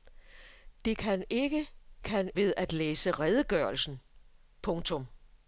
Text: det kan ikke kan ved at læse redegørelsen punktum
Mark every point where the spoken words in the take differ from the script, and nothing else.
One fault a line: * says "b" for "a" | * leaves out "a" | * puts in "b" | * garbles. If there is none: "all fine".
all fine